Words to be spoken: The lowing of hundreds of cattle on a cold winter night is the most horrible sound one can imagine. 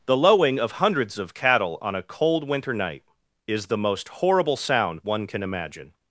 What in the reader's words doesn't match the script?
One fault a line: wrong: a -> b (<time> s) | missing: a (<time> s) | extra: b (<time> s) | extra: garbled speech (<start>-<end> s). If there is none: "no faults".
no faults